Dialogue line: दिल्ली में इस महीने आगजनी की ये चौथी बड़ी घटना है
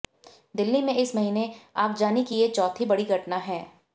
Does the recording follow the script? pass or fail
pass